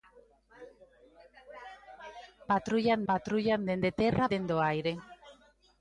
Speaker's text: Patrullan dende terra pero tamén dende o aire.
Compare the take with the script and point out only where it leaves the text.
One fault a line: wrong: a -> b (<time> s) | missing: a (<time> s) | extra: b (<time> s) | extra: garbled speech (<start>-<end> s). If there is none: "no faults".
extra: patrullan (3.1 s)
missing: pero tamén (4.3 s)